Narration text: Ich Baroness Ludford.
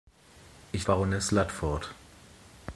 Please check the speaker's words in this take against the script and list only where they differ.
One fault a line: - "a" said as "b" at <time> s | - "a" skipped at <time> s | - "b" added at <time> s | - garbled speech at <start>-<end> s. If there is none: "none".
none